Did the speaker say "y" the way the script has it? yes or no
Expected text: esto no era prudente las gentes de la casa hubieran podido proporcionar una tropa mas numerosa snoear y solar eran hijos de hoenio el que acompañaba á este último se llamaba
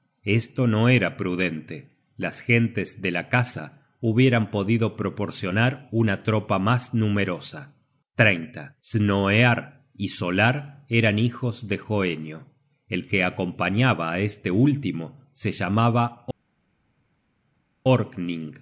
yes